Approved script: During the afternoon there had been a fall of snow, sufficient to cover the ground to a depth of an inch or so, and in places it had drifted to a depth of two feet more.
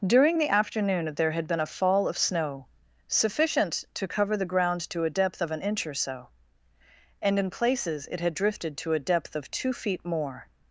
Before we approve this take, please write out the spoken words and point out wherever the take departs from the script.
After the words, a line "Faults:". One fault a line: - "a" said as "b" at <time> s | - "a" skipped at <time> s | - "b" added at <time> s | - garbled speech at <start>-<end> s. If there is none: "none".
During the afternoon there had been a fall of snow, sufficient to cover the ground to a depth of an inch or so, and in places it had drifted to a depth of two feet more.
Faults:
none